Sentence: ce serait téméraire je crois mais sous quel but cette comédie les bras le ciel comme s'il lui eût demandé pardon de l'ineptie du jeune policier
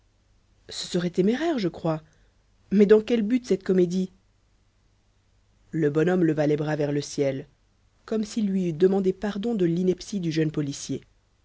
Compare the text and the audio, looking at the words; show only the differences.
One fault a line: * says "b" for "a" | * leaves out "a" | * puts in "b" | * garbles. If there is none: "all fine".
* says "dans" for "sous"
* puts in "le bonhomme leva"
* puts in "vers"